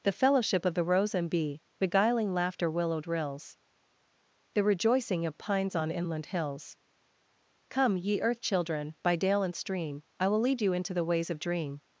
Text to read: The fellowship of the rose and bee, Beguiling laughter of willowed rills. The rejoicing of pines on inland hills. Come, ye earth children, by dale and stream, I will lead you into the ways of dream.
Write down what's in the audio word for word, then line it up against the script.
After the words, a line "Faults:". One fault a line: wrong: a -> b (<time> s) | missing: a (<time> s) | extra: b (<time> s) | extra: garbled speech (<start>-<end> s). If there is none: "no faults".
The fellowship of the rose and bee, Beguiling laughter willowed rills. The rejoicing of pines on inland hills. Come, ye earth children, by dale and stream, I will lead you into the ways of dream.
Faults:
missing: of (2.7 s)